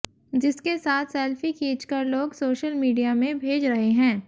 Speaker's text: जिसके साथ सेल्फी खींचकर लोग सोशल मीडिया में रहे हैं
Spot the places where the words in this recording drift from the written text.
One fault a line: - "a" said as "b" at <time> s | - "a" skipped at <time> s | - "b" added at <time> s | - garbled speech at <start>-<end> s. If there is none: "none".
- "भेज" added at 3.4 s